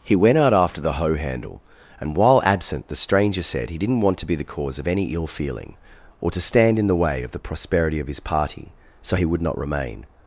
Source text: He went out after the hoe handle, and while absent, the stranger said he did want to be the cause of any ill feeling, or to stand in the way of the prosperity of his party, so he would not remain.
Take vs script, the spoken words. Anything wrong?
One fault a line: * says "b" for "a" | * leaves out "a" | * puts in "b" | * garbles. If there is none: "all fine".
* says "didn't" for "did"